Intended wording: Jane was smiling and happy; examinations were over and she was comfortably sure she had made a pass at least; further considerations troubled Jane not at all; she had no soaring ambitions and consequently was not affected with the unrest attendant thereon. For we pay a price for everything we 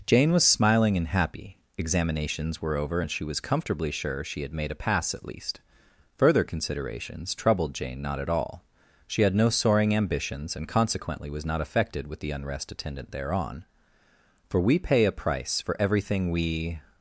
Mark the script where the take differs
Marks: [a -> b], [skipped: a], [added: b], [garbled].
Jane was smiling and happy; examinations were over and she was comfortably sure she had made a pass at least; further considerations troubled Jane not at all; she had no soaring ambitions and consequently was not affected with the unrest attendant thereon. For we pay a price for everything we